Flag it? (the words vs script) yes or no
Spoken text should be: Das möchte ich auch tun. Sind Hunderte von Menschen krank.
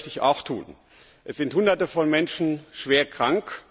yes